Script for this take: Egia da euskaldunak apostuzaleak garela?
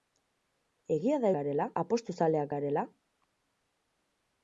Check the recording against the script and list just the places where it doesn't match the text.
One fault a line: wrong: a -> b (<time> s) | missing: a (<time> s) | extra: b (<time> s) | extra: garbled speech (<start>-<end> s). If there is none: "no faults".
wrong: euskaldunak -> garela (1.3 s)